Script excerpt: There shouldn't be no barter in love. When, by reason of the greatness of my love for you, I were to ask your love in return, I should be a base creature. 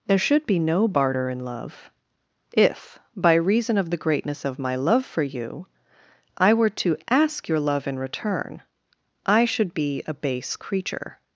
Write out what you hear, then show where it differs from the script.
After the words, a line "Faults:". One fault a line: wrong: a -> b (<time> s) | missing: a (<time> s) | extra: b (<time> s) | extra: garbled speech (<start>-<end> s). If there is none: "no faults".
There should be no barter in love. If, by reason of the greatness of my love for you, I were to ask your love in return, I should be a base creature.
Faults:
wrong: shouldn't -> should (0.2 s)
wrong: When -> If (2.5 s)